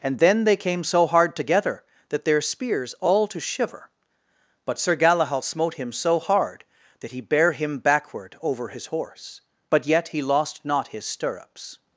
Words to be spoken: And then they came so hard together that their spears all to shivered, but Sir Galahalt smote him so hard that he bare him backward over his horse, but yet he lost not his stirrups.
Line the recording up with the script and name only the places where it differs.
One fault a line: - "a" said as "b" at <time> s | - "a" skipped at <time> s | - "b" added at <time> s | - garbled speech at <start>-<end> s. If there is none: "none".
- "shivered" said as "shiver" at 3.4 s